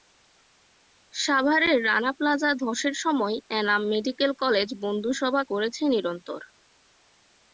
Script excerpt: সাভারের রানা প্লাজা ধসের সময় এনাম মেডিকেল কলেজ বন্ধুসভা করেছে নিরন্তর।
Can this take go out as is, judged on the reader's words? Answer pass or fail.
pass